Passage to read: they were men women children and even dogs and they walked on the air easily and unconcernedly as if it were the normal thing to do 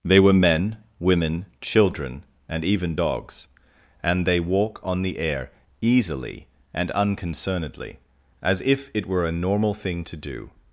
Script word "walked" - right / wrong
wrong